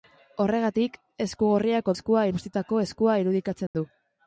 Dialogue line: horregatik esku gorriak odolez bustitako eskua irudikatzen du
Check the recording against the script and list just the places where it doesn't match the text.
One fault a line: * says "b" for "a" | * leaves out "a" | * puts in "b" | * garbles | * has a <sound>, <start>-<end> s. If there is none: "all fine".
* says "eskua" for "odolez"
* has a dropout, 3.7-3.7 s